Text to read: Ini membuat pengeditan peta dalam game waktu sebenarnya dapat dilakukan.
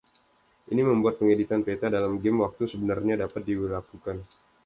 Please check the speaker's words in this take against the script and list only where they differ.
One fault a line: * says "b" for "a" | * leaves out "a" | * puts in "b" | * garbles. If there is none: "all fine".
all fine